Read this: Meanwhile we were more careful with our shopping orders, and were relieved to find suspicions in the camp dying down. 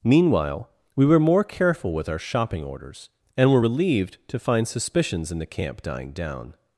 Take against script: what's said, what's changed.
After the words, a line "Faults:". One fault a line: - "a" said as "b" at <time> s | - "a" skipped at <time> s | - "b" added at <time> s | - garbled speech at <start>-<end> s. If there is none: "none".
Meanwhile we were more careful with our shopping orders, and were relieved to find suspicions in the camp dying down.
Faults:
none